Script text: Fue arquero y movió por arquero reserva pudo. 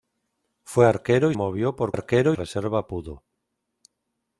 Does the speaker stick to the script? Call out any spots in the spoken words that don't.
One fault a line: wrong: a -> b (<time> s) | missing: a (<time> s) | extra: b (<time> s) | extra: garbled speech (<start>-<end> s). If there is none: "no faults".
no faults